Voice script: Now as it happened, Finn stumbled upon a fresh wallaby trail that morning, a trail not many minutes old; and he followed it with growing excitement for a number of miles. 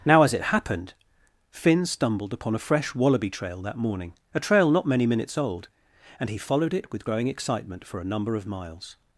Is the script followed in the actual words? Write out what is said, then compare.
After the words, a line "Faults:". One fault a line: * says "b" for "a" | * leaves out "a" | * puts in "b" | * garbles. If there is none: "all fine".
Now as it happened, Finn stumbled upon a fresh wallaby trail that morning, a trail not many minutes old; and he followed it with growing excitement for a number of miles.
Faults:
all fine